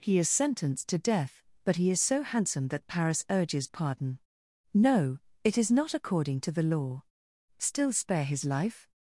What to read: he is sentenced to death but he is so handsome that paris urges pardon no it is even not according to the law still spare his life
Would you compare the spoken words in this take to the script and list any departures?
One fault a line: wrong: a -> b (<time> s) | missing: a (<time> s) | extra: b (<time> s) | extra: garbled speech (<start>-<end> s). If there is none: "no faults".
missing: even (5.7 s)